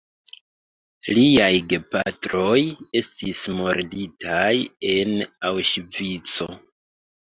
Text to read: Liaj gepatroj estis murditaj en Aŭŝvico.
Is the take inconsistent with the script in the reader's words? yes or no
no